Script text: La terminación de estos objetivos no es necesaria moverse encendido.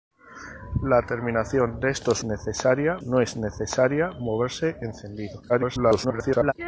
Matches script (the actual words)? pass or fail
fail